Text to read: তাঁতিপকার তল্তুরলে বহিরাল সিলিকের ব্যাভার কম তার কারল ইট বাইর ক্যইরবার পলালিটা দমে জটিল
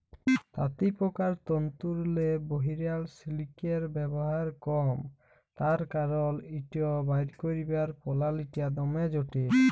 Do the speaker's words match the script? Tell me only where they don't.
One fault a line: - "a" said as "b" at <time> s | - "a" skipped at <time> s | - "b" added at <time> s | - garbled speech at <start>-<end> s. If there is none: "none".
none